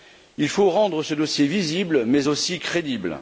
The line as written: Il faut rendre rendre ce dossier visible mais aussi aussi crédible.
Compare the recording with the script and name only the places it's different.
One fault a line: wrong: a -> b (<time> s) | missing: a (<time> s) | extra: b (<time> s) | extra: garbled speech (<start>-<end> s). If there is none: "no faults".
missing: rendre (1.0 s)
missing: aussi (2.6 s)